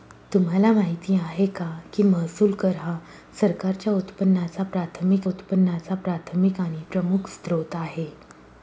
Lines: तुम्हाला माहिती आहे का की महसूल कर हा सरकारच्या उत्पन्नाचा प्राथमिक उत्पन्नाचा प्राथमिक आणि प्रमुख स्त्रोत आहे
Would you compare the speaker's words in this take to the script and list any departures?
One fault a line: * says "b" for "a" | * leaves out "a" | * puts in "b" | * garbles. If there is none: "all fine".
all fine